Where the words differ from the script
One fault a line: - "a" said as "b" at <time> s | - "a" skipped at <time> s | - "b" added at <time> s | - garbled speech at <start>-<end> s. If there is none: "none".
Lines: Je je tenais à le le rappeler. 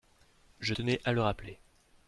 - "je" skipped at 0.7 s
- "le" skipped at 1.2 s